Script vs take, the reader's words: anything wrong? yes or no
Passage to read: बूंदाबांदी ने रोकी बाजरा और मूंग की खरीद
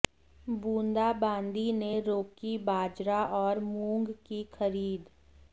no